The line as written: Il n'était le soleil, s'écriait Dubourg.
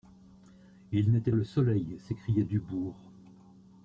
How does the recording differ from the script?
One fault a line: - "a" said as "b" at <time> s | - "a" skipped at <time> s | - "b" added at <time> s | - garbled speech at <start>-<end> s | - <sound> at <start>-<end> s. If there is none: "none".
none